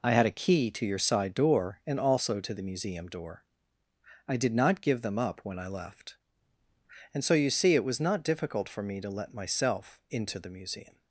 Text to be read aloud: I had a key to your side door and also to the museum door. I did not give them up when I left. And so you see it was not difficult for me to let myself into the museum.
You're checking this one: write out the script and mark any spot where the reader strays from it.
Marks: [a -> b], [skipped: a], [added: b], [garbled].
I had a key to your side door and also to the museum door. I did not give them up when I left. And so you see it was not difficult for me to let myself into the museum.